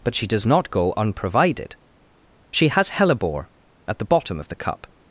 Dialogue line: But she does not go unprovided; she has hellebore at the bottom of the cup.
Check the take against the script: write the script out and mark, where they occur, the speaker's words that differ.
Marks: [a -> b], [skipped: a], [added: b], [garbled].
But she does not go unprovided; she has hellebore at the bottom of the cup.